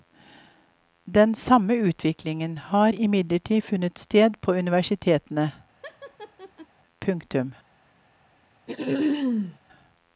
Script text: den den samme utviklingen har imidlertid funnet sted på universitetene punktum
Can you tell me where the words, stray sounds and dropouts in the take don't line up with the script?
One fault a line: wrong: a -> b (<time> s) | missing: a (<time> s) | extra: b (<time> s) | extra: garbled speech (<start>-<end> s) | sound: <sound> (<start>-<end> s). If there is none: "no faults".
missing: den (1.4 s)
sound: laugh (5.8-6.7 s)
sound: throat clearing (8.7-9.6 s)